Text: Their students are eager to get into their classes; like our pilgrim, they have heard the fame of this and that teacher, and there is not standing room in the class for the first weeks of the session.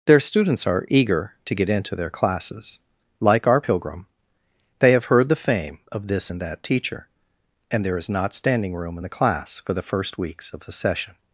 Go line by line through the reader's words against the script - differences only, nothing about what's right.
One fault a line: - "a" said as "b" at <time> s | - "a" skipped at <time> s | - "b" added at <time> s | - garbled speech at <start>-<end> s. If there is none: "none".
none